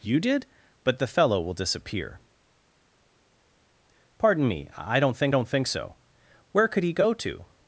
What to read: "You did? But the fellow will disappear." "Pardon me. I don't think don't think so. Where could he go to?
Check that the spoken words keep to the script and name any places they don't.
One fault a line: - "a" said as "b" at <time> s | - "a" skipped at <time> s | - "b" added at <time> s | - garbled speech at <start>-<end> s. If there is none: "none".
none